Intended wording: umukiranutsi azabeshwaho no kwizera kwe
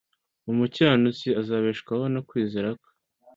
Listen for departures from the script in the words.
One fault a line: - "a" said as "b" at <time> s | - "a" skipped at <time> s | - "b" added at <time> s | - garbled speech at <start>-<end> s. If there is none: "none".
none